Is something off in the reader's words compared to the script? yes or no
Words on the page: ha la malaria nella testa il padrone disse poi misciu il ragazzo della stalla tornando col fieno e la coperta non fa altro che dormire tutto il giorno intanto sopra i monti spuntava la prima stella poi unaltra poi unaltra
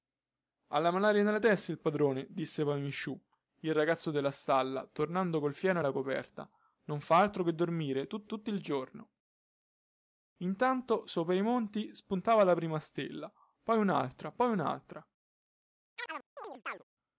yes